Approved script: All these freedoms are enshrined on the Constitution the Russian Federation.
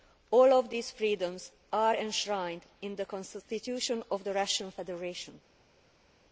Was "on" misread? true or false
true